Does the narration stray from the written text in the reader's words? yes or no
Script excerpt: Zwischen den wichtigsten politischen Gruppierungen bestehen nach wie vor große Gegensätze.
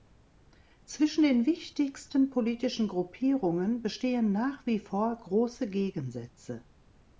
no